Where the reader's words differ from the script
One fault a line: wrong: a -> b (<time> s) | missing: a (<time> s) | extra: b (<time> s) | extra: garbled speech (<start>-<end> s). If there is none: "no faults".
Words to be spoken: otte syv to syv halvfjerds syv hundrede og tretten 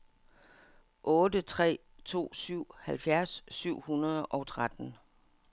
wrong: syv -> tre (1.4 s)